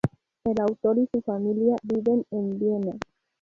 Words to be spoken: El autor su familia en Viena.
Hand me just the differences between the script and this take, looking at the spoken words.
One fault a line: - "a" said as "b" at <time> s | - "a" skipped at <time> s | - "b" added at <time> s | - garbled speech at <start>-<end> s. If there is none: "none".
- "y" added at 1.0 s
- "viven" added at 1.8 s